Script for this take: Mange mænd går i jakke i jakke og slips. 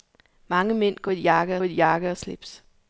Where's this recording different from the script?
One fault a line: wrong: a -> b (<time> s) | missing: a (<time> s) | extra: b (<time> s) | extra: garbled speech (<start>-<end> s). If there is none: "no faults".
no faults